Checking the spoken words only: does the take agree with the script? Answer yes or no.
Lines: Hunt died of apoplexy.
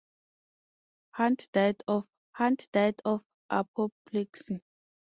no